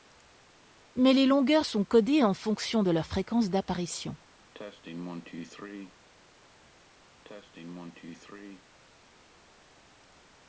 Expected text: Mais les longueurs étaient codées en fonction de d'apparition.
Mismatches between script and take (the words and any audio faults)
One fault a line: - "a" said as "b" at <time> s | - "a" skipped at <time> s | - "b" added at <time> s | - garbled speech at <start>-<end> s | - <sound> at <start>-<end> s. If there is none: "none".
- "étaient" said as "sont" at 1.6 s
- "leur fréquence" added at 2.9 s
- cough at 4.5-6.0 s
- cough at 7.2-8.7 s